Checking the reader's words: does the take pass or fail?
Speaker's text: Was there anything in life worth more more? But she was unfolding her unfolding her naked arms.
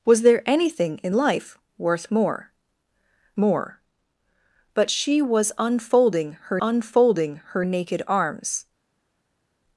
pass